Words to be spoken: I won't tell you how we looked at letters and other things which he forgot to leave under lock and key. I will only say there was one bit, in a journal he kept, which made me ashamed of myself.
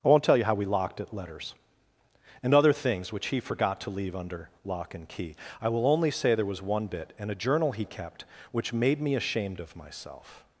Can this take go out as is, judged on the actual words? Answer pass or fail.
fail